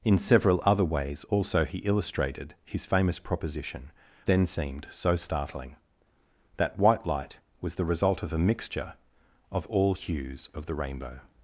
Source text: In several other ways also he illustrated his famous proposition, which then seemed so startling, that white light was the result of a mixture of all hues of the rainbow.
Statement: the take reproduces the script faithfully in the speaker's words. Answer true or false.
false